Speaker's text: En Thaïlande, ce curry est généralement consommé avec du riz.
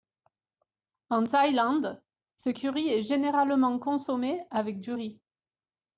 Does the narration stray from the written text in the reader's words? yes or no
no